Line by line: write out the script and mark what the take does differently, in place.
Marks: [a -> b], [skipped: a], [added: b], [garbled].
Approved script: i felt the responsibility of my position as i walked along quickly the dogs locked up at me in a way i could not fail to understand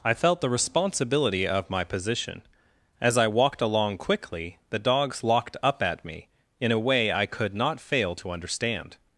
i felt the responsibility of my position as i walked along quickly the dogs locked up at me in a way i could not fail to understand